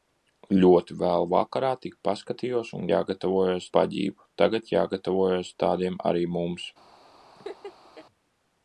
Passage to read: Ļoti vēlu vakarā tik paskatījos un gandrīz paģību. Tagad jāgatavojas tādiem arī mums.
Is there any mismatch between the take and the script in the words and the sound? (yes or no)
yes